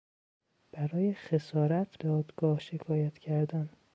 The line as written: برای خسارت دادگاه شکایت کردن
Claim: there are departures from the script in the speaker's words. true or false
false